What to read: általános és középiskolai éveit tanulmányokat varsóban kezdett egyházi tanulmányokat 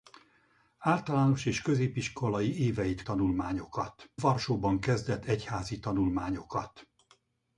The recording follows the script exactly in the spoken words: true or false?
true